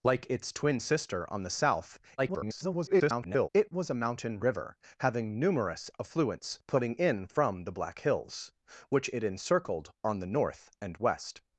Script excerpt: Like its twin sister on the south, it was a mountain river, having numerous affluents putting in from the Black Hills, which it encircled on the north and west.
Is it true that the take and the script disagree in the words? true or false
true